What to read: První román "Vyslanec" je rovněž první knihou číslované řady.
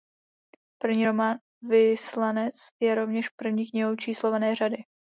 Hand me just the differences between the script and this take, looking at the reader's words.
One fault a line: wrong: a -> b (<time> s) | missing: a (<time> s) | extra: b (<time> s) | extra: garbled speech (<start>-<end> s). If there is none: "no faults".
no faults